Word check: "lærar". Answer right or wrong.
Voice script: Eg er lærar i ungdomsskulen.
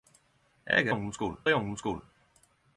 wrong